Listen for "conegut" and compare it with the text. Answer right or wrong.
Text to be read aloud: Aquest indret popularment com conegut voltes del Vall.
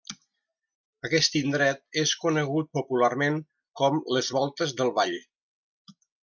wrong